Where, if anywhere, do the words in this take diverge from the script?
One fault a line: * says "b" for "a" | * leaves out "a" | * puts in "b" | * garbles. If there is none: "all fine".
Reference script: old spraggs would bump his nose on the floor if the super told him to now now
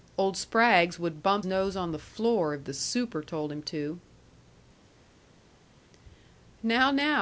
* leaves out "his"